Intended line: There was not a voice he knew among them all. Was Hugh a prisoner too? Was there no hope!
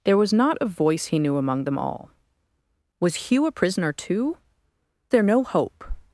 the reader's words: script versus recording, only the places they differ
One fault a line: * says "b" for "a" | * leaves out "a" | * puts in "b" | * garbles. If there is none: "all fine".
* leaves out "Was"